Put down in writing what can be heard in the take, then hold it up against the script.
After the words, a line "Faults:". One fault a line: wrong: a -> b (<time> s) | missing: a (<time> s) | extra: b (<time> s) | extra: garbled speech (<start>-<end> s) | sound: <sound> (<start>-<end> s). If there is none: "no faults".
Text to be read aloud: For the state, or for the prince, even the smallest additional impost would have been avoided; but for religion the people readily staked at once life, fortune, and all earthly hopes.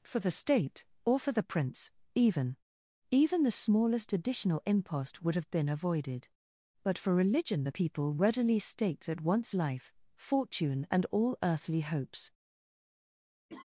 For the state, or for the prince, even even the smallest additional impost would have been avoided; but for religion the people readily staked at once life, fortune, and all earthly hopes.
Faults:
extra: even (3.1 s)
sound: laugh (13.5-13.6 s)